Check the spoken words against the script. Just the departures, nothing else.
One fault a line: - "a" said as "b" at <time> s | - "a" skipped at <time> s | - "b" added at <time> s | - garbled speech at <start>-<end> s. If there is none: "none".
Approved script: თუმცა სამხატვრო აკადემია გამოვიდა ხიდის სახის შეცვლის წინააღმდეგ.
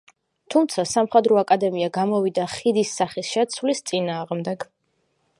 none